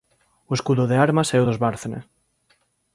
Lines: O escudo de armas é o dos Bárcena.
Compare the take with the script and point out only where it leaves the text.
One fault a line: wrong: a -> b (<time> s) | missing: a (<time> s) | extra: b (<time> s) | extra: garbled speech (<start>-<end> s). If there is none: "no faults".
no faults